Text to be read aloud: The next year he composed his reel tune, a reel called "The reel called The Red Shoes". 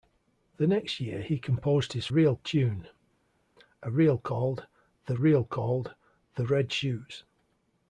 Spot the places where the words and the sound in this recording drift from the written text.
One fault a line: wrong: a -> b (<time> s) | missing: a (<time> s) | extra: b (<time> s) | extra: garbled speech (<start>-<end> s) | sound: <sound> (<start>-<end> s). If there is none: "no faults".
no faults